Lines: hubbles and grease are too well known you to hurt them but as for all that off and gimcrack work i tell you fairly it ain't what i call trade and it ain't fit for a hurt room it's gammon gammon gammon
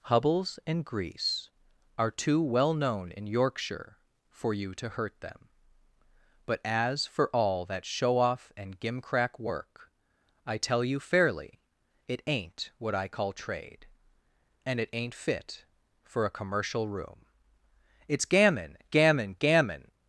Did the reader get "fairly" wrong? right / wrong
right